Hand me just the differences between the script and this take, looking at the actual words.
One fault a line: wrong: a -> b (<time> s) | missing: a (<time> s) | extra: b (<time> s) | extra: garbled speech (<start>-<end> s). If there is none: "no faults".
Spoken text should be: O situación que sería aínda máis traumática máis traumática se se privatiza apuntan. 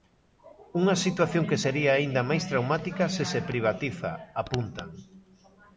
wrong: O -> Unha (0.8 s)
missing: máis traumática (3.0 s)